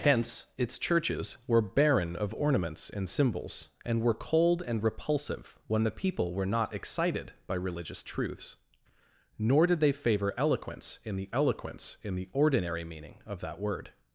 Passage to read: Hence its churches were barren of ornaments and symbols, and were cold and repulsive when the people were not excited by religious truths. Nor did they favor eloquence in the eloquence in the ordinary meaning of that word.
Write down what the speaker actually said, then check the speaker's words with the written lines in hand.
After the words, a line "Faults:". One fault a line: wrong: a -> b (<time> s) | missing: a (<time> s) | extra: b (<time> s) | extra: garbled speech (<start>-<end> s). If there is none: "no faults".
Hence its churches were barren of ornaments and symbols, and were cold and repulsive when the people were not excited by religious truths. Nor did they favor eloquence in the eloquence in the ordinary meaning of that word.
Faults:
no faults